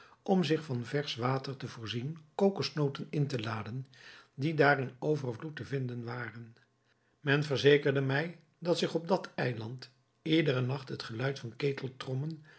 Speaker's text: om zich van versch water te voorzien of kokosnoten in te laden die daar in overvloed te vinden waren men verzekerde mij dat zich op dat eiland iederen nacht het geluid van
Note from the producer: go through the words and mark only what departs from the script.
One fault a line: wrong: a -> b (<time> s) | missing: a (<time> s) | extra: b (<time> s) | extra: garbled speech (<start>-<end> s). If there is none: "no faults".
missing: of (2.2 s)